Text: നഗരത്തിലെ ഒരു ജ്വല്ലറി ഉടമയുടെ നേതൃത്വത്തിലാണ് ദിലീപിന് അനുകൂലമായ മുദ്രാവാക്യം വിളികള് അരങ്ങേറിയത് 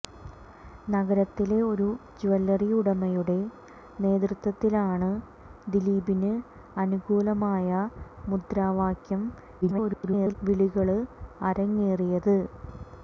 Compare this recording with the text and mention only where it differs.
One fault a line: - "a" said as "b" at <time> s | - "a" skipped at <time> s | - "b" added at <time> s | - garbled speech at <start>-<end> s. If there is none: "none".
- garbled speech at 9.6-10.4 s